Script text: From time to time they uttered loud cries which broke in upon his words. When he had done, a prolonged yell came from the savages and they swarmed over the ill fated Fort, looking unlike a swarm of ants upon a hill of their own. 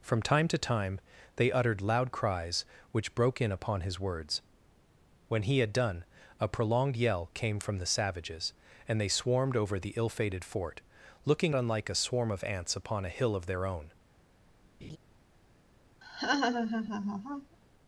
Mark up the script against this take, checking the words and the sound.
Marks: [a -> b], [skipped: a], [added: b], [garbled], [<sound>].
From time to time they uttered loud cries which broke in upon his words. When he had done, a prolonged yell came from the savages and they swarmed over the ill fated Fort, looking unlike a swarm of ants upon a hill of their own. [laugh] [laugh]